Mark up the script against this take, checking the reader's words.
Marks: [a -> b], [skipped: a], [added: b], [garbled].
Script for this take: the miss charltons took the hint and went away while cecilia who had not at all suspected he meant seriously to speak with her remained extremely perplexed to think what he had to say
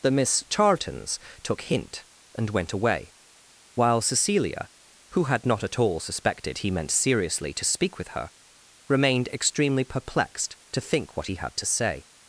the miss charltons took [skipped: the] hint and went away while cecilia who had not at all suspected he meant seriously to speak with her remained extremely perplexed to think what he had to say